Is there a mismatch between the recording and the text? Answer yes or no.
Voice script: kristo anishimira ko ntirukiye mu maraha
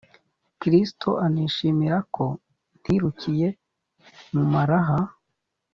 no